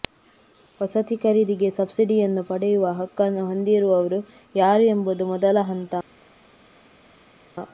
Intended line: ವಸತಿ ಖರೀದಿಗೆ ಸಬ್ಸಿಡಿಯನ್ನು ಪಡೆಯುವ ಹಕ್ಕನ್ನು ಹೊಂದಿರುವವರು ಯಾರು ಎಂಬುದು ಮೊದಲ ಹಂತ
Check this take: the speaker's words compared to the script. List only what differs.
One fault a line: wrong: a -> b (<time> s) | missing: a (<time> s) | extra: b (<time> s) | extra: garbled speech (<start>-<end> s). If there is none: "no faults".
no faults